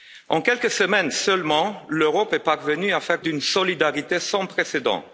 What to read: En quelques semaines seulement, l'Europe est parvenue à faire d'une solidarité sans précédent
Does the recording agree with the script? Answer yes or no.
yes